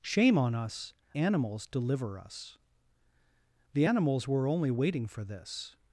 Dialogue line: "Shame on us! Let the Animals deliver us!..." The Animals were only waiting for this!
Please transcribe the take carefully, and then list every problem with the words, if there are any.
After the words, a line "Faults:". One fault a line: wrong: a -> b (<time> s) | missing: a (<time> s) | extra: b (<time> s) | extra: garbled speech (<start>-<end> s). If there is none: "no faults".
"Shame on us! Animals deliver us!..." The Animals were only waiting for this!
Faults:
missing: Let the (0.9 s)